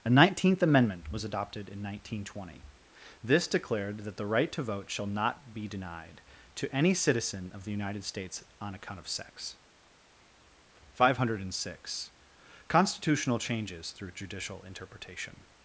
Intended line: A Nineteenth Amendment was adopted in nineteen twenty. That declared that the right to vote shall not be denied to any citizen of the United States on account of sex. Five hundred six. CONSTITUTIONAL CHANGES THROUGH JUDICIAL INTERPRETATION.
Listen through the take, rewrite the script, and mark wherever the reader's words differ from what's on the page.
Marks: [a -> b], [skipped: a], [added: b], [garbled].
A Nineteenth Amendment was adopted in nineteen twenty. [That -> This] declared that the right to vote shall not be denied to any citizen of the United States on account of sex. Five hundred six. CONSTITUTIONAL CHANGES THROUGH JUDICIAL INTERPRETATION.